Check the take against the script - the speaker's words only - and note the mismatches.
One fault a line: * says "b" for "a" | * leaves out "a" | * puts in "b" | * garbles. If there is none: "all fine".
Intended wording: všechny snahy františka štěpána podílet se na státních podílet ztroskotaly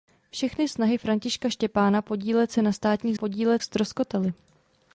all fine